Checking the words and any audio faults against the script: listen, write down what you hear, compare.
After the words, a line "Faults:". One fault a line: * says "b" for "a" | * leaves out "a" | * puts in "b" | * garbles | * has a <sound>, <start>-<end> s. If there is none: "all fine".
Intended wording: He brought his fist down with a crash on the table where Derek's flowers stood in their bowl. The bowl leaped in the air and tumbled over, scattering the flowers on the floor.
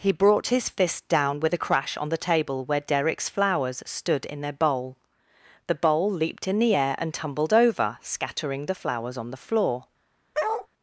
He brought his fist down with a crash on the table where Derek's flowers stood in their bowl. The bowl leaped in the air and tumbled over, scattering the flowers on the floor.
Faults:
* has a bark, 10.3-10.7 s